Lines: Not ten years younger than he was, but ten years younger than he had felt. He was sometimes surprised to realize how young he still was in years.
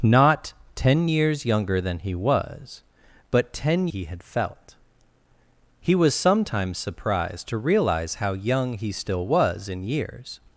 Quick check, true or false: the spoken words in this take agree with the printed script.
false